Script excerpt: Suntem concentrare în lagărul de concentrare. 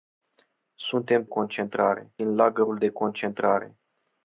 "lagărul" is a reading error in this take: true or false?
false